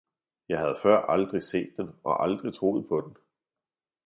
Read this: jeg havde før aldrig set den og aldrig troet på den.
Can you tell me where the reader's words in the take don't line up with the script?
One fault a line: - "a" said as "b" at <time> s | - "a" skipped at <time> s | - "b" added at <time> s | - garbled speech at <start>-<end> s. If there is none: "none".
none